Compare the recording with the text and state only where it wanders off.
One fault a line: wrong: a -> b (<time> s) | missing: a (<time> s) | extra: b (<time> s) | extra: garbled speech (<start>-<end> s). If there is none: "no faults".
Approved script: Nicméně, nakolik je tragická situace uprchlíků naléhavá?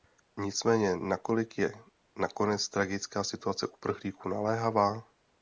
extra: nakonec (2.2 s)